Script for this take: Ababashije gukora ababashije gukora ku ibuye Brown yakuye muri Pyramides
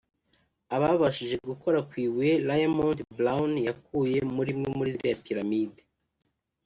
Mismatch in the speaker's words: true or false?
true